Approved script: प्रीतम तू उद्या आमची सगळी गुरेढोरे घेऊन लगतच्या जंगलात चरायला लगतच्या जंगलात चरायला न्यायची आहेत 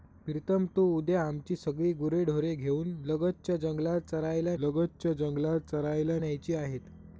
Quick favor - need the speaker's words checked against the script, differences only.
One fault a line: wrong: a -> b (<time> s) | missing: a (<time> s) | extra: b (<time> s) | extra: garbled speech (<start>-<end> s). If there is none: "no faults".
no faults